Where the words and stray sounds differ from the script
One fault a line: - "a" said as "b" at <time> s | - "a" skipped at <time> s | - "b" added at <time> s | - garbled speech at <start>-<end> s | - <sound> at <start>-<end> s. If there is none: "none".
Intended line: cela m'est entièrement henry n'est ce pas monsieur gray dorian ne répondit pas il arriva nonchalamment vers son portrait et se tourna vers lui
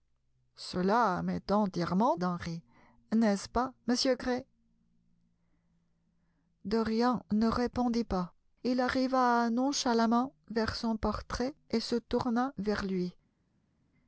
none